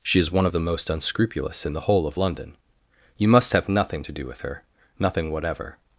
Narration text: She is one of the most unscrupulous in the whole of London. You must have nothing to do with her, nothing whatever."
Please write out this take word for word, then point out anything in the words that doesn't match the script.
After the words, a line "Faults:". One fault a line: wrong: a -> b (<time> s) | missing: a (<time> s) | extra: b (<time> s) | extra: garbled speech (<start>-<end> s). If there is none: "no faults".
She is one of the most unscrupulous in the whole of London. You must have nothing to do with her, nothing whatever."
Faults:
no faults